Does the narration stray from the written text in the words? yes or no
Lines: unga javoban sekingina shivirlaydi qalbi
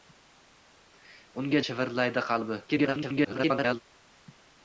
yes